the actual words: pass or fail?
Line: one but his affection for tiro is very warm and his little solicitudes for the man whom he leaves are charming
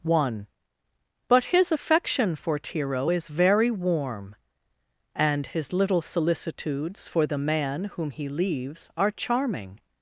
pass